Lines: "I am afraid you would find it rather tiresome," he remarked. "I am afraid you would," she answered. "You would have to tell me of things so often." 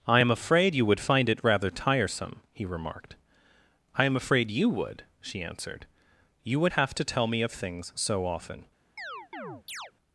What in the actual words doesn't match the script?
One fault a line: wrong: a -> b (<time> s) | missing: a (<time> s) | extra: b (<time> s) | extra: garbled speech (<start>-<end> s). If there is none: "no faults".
no faults